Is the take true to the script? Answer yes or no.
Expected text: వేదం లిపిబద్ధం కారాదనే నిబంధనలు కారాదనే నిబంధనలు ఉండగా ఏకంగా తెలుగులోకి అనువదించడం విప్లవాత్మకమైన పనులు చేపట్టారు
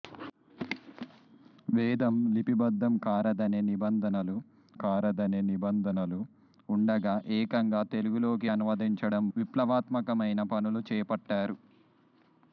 yes